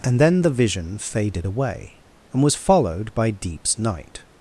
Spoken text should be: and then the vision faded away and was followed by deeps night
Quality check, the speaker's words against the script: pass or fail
pass